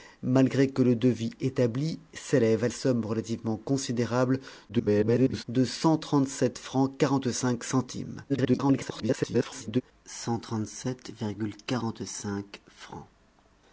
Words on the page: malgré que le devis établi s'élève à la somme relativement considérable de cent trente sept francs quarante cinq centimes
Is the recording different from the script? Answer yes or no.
yes